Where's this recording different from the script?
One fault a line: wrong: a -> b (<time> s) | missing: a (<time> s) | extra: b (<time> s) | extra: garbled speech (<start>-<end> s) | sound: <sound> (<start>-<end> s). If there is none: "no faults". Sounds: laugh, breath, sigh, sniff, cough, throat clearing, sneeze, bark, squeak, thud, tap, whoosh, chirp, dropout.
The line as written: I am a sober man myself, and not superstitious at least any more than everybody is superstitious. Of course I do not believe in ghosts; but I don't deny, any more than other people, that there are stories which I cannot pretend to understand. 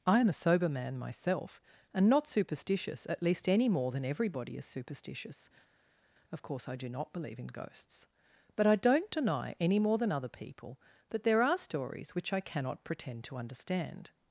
no faults